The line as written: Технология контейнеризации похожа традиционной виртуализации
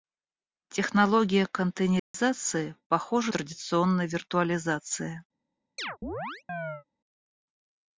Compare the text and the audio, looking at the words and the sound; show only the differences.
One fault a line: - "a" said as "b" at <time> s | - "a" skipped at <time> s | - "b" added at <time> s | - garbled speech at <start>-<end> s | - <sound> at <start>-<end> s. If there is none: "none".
- dropout at 2.0-2.1 s
- chirp at 5.8-6.8 s